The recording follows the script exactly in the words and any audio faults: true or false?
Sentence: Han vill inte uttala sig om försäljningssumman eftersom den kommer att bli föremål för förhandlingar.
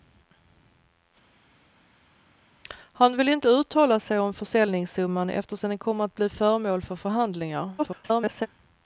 false